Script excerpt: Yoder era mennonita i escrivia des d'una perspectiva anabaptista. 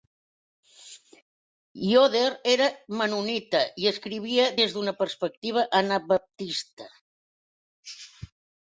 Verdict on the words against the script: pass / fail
pass